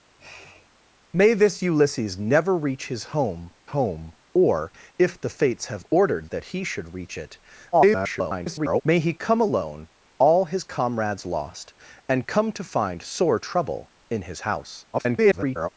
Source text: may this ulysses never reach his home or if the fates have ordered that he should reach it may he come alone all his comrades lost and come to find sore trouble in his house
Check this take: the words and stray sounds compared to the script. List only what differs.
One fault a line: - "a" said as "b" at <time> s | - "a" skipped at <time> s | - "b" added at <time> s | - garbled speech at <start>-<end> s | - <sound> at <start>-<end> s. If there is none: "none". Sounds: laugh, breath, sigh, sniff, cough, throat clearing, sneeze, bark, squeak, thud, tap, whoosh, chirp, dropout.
- sniff at 0.2-0.7 s
- "home" added at 3.7 s
- garbled speech at 7.7-8.8 s
- garbled speech at 14.9-15.7 s